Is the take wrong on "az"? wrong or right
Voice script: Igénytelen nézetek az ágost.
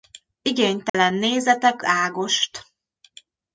wrong